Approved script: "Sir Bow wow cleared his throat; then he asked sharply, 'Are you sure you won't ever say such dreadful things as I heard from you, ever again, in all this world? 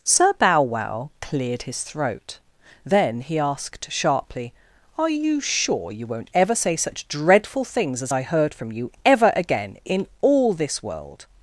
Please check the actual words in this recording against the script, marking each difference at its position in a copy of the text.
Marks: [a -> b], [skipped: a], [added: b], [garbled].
"Sir Bow wow cleared his throat; then he asked sharply, 'Are you sure you won't ever say such dreadful things as I heard from you, ever again, in all this world?